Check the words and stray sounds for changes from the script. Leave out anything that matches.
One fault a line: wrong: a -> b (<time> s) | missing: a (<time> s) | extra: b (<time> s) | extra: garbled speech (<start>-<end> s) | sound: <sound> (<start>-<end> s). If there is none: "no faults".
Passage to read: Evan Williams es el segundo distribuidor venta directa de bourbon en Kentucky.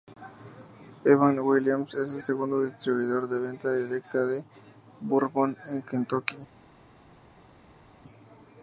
extra: de (3.3 s)